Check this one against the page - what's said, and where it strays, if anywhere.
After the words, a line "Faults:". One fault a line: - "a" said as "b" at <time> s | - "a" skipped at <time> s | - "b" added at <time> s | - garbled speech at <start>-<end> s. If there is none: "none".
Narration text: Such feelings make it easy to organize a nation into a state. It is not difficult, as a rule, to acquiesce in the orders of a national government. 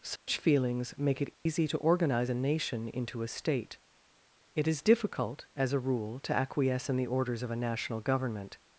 Such feelings make it easy to organize a nation into a state. It is difficult, as a rule, to acquiesce in the orders of a national government.
Faults:
- "not" skipped at 4.8 s